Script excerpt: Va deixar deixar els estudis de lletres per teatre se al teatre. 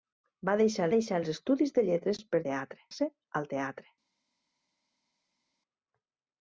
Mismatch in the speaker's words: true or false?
false